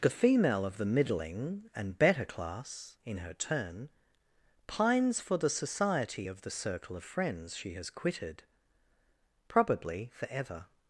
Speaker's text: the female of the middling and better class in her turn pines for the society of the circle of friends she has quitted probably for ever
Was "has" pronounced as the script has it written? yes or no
yes